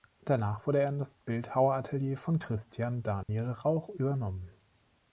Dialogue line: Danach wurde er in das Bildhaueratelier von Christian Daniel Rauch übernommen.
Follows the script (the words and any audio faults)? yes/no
no